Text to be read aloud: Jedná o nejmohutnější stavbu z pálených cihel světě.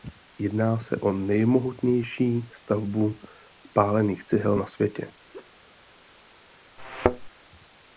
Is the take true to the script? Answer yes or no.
no